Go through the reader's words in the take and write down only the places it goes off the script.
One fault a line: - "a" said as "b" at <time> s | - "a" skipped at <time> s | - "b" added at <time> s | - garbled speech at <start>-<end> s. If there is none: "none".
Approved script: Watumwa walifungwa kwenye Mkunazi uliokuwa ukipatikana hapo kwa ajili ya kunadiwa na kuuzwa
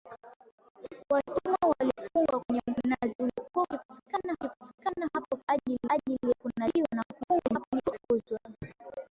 - "ukipatikana" added at 4.4 s
- "ajili" added at 5.9 s
- garbled speech at 7.2-8.1 s